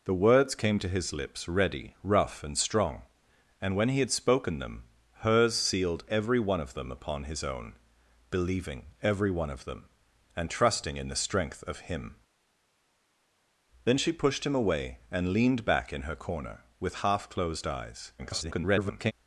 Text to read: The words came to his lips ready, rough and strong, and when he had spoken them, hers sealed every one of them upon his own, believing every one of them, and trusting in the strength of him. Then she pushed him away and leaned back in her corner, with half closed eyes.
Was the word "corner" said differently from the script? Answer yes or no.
no